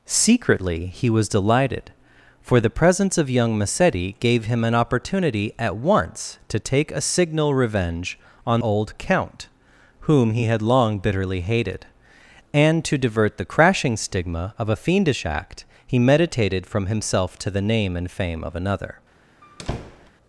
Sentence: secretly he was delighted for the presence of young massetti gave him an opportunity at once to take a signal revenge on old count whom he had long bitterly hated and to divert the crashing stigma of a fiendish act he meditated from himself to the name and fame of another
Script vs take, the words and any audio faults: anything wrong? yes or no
yes